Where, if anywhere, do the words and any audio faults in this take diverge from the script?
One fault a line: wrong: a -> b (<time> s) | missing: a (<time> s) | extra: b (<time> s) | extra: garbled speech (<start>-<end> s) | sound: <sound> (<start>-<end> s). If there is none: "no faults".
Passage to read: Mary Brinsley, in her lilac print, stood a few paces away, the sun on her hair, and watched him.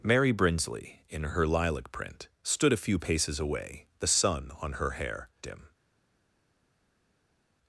missing: and watched (5.3 s)